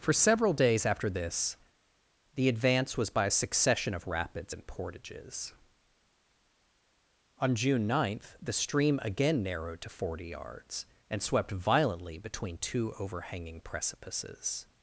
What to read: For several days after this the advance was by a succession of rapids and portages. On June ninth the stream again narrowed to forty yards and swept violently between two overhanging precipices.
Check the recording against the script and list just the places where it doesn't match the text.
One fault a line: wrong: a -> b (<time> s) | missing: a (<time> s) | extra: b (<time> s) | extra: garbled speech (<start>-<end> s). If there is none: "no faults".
no faults